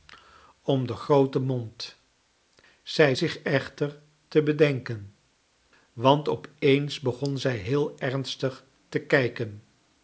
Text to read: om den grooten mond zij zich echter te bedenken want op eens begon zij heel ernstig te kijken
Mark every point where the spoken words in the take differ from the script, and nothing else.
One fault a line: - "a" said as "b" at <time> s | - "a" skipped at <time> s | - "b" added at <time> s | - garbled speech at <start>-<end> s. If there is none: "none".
none